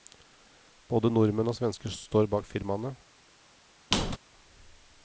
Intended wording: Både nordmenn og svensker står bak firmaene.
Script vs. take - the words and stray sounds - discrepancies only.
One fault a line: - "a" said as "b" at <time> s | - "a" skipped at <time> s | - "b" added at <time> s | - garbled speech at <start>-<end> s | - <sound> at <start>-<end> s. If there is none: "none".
- squeak at 3.9-4.2 s